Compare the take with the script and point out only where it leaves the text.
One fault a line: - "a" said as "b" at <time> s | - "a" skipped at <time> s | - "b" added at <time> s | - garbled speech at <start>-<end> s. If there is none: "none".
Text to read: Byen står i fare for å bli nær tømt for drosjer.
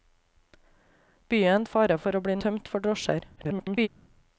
- "står" skipped at 1.6 s
- "nær" skipped at 2.4 s
- garbled speech at 3.4-3.9 s